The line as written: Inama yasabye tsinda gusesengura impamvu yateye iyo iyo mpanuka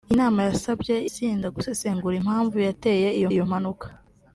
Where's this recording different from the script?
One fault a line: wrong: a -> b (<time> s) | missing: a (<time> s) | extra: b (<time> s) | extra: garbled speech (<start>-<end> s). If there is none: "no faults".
no faults